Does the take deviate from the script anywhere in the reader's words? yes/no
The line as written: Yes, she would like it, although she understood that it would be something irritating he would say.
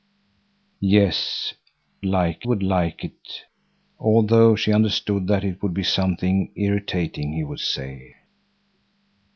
yes